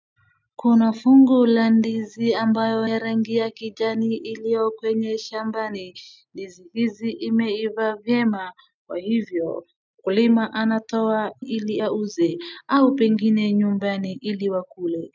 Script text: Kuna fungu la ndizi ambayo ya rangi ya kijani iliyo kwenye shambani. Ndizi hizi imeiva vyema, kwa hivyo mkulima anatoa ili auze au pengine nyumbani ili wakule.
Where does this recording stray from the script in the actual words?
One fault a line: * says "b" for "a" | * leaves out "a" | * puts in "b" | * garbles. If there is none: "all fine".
all fine